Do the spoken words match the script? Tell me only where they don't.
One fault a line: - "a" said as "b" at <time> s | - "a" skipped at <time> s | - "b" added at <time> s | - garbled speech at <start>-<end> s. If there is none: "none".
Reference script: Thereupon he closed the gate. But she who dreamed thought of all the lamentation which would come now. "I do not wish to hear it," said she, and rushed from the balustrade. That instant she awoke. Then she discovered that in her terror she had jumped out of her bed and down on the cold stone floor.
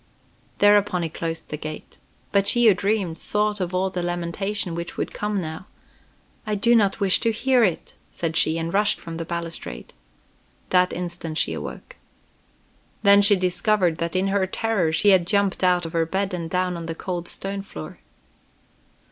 none